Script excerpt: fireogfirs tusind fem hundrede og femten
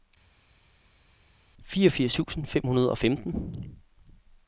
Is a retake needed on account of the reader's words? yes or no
no